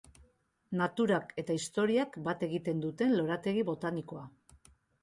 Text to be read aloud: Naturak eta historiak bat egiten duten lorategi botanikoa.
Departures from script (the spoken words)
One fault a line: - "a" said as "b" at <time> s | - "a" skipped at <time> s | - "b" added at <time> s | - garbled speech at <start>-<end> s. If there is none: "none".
none